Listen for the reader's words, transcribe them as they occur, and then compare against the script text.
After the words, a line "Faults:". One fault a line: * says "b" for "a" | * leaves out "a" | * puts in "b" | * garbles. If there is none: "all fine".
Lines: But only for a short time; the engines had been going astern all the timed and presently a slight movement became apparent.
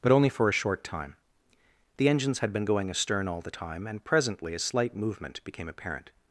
But only for a short time; the engines had been going astern all the time and presently a slight movement became apparent.
Faults:
* says "time" for "timed"